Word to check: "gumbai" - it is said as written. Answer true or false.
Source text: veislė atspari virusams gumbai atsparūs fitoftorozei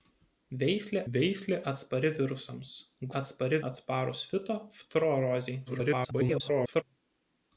false